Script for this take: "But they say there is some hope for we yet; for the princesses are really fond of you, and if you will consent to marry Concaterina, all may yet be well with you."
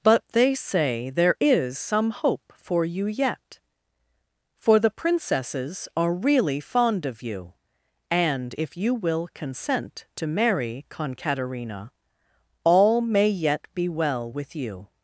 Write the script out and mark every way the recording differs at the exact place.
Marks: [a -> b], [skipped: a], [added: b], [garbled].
"But they say there is some hope for [we -> you] yet; for the princesses are really fond of you, and if you will consent to marry Concaterina, all may yet be well with you."